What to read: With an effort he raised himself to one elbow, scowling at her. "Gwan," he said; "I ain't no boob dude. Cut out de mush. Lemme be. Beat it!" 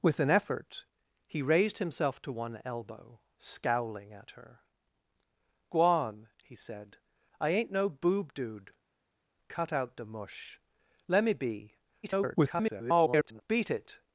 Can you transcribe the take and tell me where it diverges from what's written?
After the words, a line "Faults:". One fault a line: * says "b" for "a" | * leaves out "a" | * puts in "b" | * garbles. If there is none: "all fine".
With an effort he raised himself to one elbow, scowling at her. "Gwan," he said; "I ain't no boob dude. Cut out de mush. Lemme be. [garbled] Beat it!"
Faults:
* garbles